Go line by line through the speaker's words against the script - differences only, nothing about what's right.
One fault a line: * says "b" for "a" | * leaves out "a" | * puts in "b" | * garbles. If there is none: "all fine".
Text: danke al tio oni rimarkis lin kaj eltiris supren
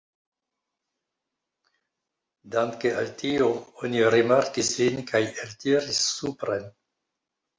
all fine